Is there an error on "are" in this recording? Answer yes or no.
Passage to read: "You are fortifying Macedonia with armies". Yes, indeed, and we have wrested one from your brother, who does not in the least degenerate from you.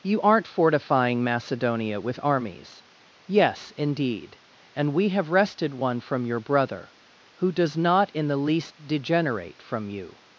yes